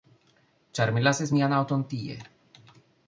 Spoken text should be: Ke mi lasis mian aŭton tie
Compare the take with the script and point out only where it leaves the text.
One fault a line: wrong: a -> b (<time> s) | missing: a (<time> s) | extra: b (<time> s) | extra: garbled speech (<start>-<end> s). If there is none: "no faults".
wrong: Ke -> Ĉar (0.8 s)